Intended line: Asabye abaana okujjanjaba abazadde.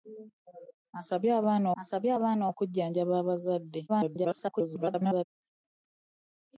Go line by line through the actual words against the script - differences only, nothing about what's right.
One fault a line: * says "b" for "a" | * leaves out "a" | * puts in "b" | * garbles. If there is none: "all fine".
* puts in "asabye abaana"
* garbles